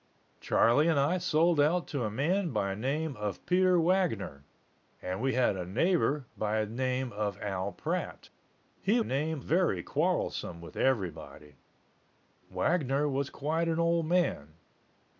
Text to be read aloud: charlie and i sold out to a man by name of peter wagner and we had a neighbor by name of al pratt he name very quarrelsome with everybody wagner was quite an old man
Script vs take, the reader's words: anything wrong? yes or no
no